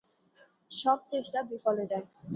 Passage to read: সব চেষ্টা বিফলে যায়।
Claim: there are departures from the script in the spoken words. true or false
false